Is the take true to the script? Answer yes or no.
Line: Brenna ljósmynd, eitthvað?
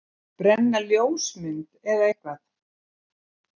no